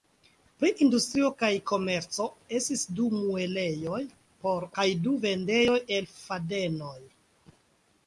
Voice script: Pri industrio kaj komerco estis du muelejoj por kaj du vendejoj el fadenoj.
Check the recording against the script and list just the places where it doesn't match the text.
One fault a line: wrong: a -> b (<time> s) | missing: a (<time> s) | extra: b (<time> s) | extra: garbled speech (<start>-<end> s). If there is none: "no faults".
no faults